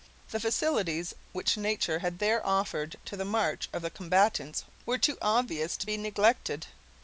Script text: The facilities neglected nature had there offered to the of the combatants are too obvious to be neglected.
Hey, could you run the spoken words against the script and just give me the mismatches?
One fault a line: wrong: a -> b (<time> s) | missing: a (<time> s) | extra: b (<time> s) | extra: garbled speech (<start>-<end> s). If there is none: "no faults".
wrong: neglected -> which (1.3 s)
extra: march (3.2 s)
wrong: are -> were (4.8 s)